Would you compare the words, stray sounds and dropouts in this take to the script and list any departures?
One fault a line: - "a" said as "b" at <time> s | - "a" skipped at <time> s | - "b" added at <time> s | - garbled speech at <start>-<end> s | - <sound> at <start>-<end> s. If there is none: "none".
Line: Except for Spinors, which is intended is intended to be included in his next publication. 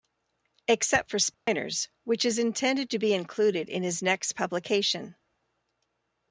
- dropout at 1.3-1.5 s
- "is intended" skipped at 2.9 s